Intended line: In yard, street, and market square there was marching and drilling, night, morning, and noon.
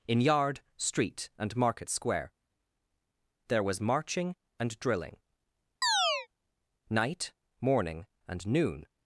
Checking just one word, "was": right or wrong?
right